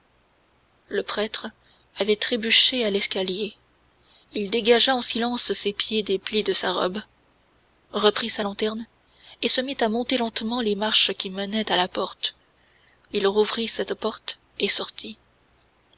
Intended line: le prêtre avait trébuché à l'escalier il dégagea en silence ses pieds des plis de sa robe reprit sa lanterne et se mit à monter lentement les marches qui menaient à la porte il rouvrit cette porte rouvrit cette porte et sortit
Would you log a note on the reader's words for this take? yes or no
yes